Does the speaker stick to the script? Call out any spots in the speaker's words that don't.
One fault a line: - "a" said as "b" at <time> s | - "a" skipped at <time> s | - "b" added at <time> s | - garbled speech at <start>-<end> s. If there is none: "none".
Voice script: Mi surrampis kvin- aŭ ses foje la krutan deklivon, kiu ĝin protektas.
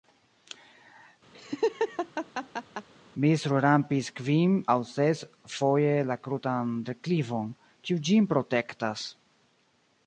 none